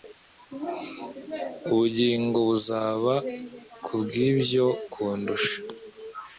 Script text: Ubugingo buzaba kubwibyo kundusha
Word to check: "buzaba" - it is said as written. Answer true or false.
true